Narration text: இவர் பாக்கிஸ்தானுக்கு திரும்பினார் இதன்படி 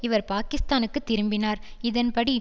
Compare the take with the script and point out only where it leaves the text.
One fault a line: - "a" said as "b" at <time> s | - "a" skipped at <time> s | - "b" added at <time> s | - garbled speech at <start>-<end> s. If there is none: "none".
none